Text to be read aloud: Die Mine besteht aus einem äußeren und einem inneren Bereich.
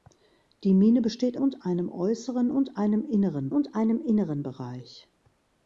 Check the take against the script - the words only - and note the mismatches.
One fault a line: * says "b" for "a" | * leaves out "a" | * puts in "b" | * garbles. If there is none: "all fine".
* says "und" for "aus"
* puts in "und einem inneren"